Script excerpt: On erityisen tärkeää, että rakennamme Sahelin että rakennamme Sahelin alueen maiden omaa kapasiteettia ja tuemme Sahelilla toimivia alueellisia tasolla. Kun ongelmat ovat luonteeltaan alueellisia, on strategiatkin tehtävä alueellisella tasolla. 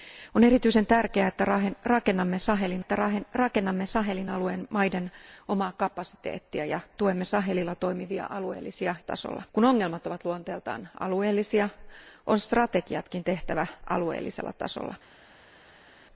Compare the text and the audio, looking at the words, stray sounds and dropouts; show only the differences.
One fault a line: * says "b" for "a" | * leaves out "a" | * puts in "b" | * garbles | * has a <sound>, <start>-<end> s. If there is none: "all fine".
all fine